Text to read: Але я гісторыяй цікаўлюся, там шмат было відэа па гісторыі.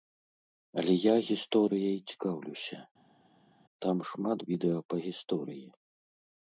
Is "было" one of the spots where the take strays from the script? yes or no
yes